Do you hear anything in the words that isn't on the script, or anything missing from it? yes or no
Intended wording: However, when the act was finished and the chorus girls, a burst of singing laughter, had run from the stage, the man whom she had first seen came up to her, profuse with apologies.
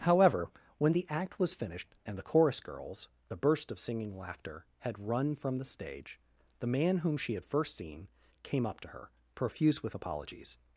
no